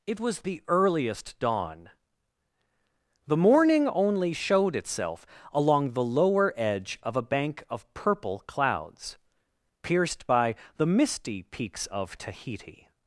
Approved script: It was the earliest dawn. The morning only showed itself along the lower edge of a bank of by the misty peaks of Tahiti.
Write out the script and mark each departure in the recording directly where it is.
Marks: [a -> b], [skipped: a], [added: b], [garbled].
It was the earliest dawn. The morning only showed itself along the lower edge of a bank of [added: purple clouds pierced] by the misty peaks of Tahiti.